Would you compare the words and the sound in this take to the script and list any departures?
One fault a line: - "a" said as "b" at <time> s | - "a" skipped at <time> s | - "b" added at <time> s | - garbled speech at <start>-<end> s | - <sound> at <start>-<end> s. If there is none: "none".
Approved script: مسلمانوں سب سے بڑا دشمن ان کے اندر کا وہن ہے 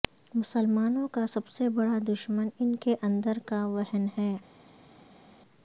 - "کا" added at 1.1 s